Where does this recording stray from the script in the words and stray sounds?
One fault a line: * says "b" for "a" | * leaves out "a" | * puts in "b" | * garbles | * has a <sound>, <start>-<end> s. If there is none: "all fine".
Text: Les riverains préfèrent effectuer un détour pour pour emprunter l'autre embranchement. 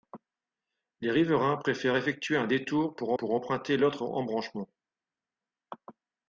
all fine